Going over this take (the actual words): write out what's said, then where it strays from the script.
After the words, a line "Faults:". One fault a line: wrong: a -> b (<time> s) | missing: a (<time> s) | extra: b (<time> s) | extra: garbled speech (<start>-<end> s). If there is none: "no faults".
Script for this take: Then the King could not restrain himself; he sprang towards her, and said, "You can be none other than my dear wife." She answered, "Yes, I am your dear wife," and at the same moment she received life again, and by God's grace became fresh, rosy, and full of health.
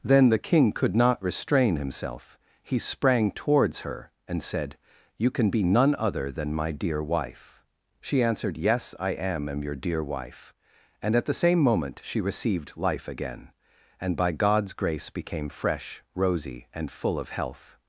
Then the King could not restrain himself; he sprang towards her, and said, "You can be none other than my dear wife." She answered, "Yes, I am am your dear wife," and at the same moment she received life again, and by God's grace became fresh, rosy, and full of health.
Faults:
extra: am (9.5 s)